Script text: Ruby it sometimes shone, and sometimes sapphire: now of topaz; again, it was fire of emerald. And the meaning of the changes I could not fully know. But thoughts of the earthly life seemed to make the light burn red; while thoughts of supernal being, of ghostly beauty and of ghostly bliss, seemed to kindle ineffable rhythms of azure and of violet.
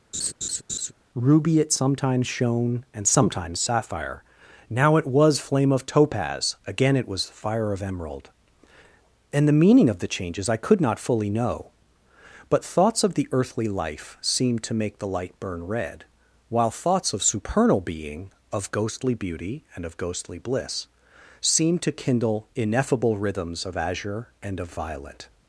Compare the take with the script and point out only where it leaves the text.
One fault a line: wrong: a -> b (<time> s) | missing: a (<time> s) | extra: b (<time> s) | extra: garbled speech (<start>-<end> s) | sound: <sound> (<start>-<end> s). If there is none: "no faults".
sound: laugh (0.1-0.9 s)
extra: it was flame (5.0 s)